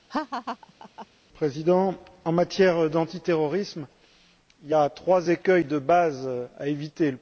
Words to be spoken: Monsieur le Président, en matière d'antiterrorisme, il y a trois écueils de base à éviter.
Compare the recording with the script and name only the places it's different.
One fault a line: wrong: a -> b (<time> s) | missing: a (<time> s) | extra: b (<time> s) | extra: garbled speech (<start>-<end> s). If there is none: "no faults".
no faults